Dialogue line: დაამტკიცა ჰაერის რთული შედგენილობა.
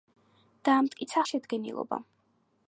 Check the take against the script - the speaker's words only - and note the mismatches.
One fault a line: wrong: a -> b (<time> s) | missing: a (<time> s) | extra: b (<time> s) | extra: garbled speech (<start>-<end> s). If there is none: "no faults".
missing: ჰაერის რთული (1.2 s)